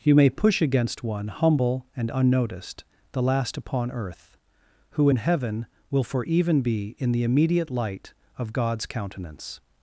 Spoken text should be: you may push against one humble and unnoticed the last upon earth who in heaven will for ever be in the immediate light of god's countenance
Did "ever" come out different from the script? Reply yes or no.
yes